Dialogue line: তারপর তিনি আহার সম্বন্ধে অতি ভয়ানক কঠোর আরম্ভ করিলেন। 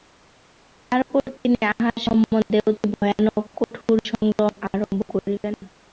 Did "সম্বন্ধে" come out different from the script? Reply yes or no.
no